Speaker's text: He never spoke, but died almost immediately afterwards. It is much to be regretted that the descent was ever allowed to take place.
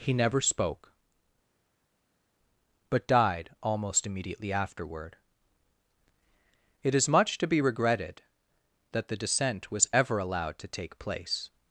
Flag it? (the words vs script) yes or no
yes